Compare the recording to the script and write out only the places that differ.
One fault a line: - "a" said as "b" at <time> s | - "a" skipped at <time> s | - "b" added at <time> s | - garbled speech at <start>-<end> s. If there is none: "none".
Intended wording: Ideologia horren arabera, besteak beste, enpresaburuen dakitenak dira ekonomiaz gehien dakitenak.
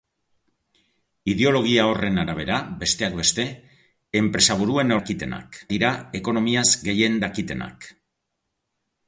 none